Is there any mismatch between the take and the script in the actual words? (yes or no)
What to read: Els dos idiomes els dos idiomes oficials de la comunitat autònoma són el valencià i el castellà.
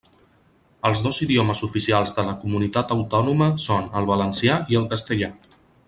yes